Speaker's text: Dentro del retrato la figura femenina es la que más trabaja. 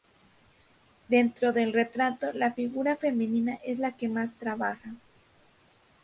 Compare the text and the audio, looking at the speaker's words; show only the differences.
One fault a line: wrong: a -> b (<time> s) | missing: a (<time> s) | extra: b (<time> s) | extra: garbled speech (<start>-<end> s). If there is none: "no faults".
no faults